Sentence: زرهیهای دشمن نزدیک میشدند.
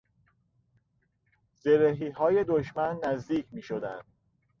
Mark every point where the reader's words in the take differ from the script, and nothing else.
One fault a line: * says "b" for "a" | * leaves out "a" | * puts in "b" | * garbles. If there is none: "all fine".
all fine